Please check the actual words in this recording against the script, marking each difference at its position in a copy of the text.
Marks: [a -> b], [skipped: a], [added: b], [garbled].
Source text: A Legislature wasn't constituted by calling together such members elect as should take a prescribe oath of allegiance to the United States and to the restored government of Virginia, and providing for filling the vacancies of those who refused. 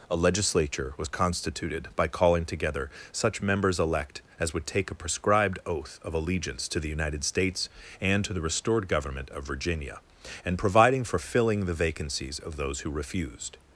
A Legislature [wasn't -> was] constituted by calling together such members elect as [should -> would] take a [prescribe -> prescribed] oath of allegiance to the United States and to the restored government of Virginia, and providing for filling the vacancies of those who refused.